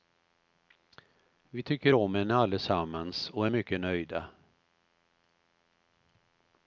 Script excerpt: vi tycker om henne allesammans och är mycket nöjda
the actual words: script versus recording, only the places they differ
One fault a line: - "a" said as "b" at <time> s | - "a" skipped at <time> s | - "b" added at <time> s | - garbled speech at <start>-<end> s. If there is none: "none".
none